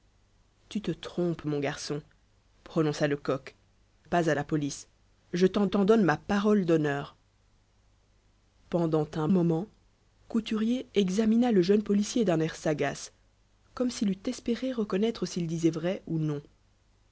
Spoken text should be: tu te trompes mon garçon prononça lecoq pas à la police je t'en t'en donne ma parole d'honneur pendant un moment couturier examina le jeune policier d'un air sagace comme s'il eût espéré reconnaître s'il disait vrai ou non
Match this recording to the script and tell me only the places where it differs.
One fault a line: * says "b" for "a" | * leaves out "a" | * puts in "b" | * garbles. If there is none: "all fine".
all fine